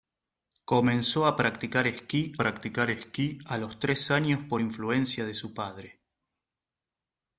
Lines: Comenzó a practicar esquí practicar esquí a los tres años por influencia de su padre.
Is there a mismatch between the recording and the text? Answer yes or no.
no